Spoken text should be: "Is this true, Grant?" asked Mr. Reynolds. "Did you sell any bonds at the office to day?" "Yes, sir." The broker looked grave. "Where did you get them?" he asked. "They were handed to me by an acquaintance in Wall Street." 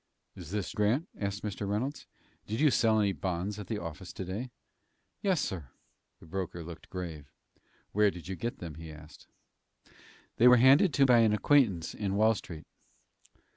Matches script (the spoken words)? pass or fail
fail